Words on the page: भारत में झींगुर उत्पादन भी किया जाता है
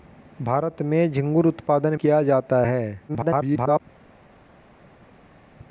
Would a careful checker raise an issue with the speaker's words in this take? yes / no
yes